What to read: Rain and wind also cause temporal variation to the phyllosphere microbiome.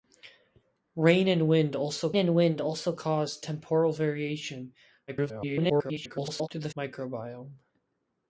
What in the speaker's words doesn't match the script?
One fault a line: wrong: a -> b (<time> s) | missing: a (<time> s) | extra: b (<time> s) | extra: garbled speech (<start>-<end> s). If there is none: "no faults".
extra: and wind also (2.2 s)
extra: garbled speech (5.1-6.5 s)
missing: phyllosphere (6.7 s)